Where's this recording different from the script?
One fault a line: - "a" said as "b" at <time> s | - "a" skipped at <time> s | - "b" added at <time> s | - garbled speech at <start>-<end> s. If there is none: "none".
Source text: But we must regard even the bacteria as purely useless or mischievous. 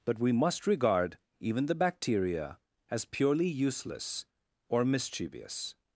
none